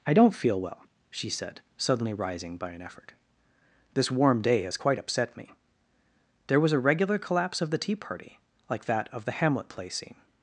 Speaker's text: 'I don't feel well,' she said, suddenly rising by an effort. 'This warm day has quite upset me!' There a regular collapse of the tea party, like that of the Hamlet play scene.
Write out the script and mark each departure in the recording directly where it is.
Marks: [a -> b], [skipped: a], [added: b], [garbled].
'I don't feel well,' she said, suddenly rising by an effort. 'This warm day has quite upset me!' There [added: was] a regular collapse of the tea party, like that of the Hamlet play scene.